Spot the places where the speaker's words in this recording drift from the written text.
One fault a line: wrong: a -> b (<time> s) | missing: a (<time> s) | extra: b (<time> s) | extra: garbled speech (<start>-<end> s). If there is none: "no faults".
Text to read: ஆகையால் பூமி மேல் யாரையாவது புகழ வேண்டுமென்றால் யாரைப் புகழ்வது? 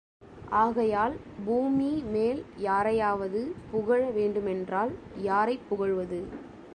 no faults